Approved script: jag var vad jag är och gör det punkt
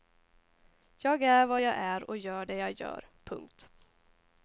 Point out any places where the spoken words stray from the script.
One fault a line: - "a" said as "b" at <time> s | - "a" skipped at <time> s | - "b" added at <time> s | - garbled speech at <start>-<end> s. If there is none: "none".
- "var" said as "är" at 1.2 s
- "jag gör" added at 2.5 s